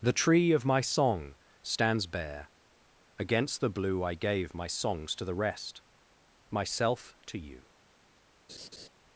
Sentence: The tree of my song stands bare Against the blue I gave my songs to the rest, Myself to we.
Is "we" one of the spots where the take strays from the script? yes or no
yes